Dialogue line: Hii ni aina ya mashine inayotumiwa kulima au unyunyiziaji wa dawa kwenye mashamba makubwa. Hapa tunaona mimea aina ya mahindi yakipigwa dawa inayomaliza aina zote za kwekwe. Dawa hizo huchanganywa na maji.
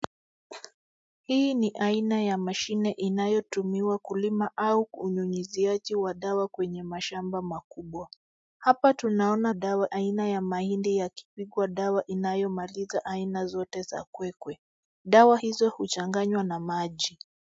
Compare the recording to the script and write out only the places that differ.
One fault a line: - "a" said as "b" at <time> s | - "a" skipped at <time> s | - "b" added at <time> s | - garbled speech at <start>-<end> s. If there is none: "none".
- "mimea" said as "dawa" at 9.5 s